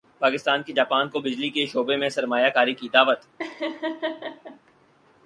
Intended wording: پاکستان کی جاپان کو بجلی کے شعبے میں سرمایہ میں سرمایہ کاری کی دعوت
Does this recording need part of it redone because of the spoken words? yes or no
yes